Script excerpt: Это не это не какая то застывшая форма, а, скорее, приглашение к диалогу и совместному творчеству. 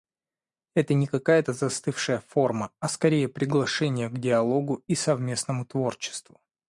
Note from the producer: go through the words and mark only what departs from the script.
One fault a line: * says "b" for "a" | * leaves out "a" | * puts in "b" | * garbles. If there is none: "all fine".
* leaves out "это не"